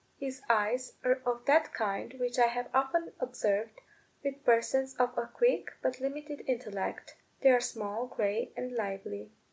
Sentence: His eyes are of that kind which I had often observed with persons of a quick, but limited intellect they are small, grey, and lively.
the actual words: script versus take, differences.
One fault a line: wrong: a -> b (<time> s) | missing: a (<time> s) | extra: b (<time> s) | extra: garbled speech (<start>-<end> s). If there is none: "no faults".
wrong: had -> have (2.5 s)